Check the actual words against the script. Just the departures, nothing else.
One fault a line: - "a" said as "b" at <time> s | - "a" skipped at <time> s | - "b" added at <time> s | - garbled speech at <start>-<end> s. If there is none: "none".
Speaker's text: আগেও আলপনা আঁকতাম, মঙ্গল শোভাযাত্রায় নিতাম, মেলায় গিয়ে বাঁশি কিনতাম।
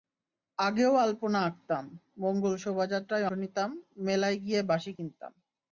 none